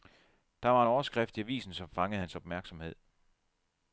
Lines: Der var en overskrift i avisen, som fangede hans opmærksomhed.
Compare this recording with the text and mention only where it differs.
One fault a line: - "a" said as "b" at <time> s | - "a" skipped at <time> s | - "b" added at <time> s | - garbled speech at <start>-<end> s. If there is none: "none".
none